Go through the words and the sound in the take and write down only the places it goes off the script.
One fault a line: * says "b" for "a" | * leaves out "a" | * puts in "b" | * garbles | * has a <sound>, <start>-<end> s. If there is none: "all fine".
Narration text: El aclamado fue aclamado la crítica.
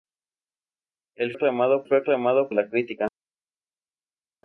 all fine